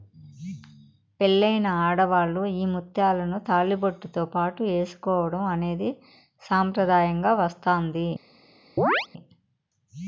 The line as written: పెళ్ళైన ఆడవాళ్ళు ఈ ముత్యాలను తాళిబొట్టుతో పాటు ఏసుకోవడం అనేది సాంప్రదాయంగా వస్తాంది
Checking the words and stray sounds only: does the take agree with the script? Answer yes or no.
no